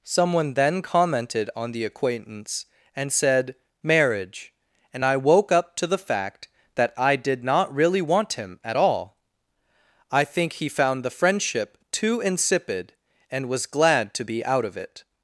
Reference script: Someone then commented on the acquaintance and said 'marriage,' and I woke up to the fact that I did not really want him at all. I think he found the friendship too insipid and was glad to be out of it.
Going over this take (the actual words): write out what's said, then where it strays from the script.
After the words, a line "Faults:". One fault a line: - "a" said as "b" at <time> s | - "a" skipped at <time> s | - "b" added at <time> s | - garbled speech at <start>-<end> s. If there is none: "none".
Someone then commented on the acquaintance and said 'marriage,' and I woke up to the fact that I did not really want him at all. I think he found the friendship too insipid and was glad to be out of it.
Faults:
none